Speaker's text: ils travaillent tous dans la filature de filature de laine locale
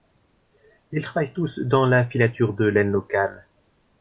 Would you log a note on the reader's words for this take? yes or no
yes